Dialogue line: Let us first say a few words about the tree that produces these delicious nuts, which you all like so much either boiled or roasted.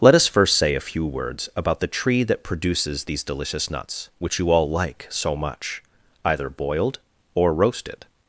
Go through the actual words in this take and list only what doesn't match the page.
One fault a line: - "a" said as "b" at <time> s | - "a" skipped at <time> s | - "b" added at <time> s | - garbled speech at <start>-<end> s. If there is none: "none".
none